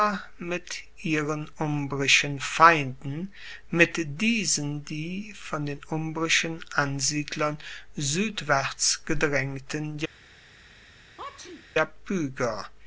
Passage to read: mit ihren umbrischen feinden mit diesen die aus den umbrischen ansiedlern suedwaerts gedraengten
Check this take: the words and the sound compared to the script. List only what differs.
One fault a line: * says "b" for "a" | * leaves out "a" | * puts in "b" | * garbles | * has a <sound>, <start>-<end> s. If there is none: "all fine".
* says "von" for "aus"
* has a sneeze, 11.2-11.7 s